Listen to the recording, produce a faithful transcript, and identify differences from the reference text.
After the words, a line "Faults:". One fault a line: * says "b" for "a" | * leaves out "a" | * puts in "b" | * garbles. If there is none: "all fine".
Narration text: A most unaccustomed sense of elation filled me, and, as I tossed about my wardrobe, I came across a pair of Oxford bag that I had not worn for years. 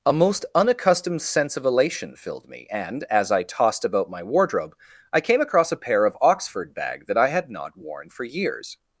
A most unaccustomed sense of elation filled me, and, as I tossed about my wardrobe, I came across a pair of Oxford bag that I had not worn for years.
Faults:
all fine